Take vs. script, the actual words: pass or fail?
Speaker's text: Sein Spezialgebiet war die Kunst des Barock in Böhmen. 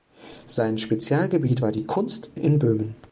fail